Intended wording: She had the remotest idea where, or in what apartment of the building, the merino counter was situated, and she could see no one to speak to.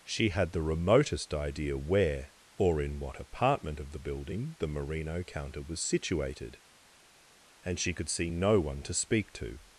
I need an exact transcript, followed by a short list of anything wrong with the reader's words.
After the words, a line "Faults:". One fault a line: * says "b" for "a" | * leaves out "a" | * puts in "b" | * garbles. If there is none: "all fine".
She had the remotest idea where, or in what apartment of the building, the merino counter was situated, and she could see no one to speak to.
Faults:
all fine